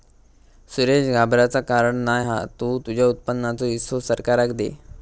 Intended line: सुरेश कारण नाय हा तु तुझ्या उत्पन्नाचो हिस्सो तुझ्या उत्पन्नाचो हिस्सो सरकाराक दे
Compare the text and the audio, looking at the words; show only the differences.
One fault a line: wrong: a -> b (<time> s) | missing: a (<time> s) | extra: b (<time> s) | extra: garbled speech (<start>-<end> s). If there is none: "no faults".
extra: घाबराचा (1.1 s)
missing: तुझ्या उत्पन्नाचो हिस्सो (4.0 s)